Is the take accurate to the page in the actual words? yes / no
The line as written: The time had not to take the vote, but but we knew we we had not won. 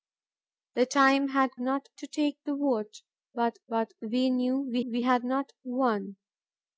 yes